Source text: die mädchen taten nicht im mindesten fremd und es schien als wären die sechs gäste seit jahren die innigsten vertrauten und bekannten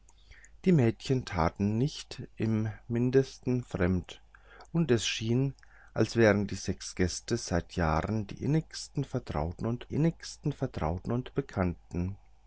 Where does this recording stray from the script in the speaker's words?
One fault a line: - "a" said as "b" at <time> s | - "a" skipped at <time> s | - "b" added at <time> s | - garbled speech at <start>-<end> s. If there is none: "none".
- "innigsten vertrauten und" added at 9.9 s